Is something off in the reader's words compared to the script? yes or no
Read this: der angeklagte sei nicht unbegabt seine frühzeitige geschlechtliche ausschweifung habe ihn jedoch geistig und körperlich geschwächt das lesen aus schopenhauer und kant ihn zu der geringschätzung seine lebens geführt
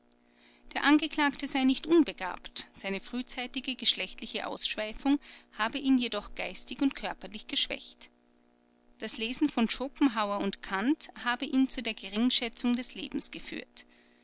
yes